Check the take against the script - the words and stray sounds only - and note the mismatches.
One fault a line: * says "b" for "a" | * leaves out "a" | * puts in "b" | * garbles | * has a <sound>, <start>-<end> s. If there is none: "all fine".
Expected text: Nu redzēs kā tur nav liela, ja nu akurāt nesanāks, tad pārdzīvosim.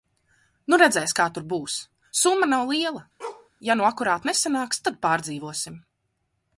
* puts in "būs summa"
* has a bark, 3.2-3.5 s